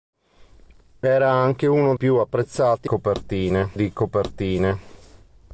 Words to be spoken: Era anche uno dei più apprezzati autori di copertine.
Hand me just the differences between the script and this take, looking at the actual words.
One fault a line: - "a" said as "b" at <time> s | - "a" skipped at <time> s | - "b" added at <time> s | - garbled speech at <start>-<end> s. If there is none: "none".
- "dei" skipped at 1.9 s
- "autori" said as "copertine" at 2.8 s